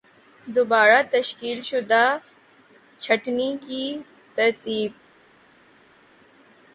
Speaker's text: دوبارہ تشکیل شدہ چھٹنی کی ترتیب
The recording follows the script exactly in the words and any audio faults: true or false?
true